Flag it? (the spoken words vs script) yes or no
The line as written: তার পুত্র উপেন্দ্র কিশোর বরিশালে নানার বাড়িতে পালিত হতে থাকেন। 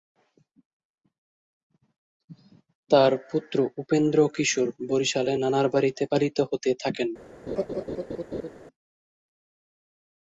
no